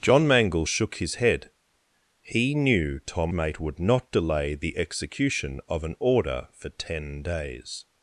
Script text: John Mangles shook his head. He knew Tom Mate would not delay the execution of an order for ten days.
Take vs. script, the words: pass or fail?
pass